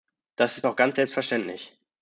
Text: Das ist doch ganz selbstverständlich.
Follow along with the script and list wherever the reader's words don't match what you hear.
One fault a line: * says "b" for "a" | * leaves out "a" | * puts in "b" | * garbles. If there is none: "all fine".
all fine